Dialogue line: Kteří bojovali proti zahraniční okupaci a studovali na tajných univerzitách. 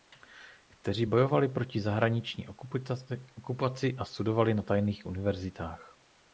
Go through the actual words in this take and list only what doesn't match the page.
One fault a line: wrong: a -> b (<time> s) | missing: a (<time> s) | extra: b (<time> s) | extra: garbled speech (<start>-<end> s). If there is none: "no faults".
no faults